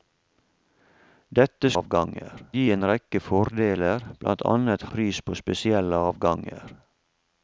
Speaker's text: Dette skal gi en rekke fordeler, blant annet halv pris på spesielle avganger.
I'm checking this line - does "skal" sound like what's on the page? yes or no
no